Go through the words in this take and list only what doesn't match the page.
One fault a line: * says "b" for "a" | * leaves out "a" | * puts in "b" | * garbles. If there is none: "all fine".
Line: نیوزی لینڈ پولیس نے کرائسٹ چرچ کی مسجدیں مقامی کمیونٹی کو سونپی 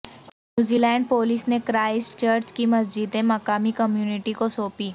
all fine